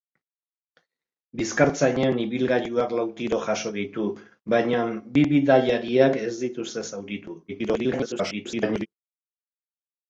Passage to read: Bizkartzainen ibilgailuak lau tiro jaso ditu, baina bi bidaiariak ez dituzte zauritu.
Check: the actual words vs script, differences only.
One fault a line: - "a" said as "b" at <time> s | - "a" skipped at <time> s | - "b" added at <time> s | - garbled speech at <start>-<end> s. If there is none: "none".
- garbled speech at 7.5-8.9 s